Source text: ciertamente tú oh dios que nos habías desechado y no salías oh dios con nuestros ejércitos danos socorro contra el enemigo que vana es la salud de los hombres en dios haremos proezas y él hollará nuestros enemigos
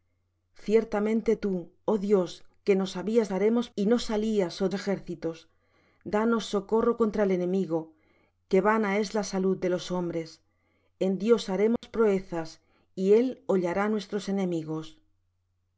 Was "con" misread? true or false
true